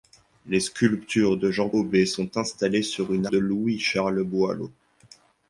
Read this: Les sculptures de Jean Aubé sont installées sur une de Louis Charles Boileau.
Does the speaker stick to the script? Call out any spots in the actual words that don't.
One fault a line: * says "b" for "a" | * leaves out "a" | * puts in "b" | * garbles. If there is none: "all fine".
all fine